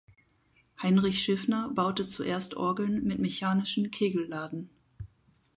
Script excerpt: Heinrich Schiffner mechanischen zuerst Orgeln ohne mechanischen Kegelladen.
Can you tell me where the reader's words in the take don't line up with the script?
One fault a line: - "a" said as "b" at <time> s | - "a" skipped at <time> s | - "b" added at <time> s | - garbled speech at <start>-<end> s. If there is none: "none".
- "mechanischen" said as "baute" at 1.7 s
- "ohne" said as "mit" at 3.0 s